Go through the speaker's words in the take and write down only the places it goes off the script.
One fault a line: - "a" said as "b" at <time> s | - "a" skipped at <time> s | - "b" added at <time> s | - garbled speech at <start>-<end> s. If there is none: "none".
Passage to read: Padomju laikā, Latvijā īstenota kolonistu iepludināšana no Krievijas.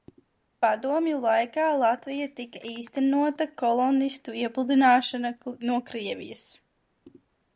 - "tika" added at 2.4 s